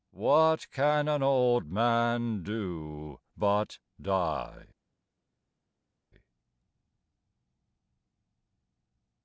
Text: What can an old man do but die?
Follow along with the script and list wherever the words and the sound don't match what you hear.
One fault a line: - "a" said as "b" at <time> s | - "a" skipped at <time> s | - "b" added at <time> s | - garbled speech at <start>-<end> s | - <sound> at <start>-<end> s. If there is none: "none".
none